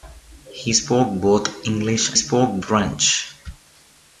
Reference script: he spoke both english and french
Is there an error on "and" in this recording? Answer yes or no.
yes